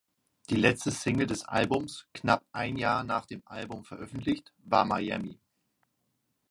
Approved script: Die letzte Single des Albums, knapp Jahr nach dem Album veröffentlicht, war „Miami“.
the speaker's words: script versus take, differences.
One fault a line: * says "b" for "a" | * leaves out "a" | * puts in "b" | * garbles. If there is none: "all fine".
* puts in "ein"